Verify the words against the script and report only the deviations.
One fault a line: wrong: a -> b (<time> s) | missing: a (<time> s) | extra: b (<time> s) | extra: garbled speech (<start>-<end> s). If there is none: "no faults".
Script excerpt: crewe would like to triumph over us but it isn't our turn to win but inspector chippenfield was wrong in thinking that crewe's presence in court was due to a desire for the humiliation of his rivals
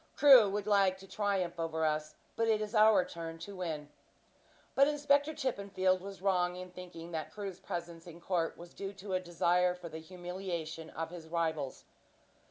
wrong: isn't -> is (2.6 s)